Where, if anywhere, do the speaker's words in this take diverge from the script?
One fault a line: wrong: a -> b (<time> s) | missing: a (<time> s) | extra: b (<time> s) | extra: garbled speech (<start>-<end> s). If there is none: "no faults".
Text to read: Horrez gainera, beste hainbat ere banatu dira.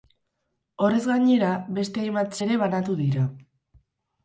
no faults